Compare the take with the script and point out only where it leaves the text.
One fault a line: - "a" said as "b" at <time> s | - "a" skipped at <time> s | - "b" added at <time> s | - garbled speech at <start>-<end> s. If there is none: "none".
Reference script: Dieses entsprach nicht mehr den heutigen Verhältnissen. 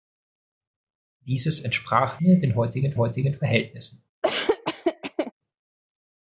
- "nicht" skipped at 2.2 s
- "heutigen" added at 3.0 s